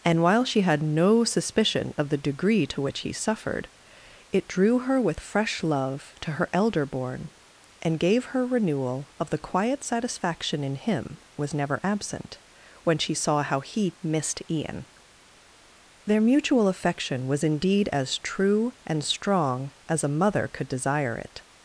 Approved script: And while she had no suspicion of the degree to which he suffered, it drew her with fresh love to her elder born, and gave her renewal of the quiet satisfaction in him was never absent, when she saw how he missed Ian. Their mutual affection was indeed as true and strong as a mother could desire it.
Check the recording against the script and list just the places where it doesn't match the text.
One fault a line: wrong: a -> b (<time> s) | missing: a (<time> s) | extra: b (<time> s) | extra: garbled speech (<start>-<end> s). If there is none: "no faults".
no faults